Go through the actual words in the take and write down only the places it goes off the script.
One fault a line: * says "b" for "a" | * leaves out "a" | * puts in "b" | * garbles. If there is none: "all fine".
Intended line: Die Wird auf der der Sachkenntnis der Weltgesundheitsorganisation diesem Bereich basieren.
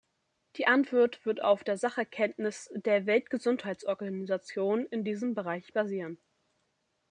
* puts in "Antwort"
* leaves out "der"
* puts in "in"